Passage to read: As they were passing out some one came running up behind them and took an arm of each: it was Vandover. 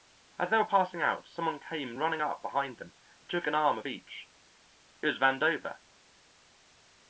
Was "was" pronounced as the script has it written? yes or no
yes